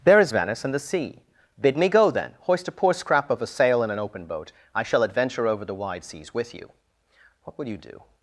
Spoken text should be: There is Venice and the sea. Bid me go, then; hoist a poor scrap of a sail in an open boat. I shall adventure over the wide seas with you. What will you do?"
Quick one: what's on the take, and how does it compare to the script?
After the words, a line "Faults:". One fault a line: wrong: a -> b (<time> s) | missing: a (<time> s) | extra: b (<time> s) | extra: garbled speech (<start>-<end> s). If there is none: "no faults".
There is Venice and the sea. Bid me go, then; hoist a poor scrap of a sail in an open boat. I shall adventure over the wide seas with you. What will you do?"
Faults:
no faults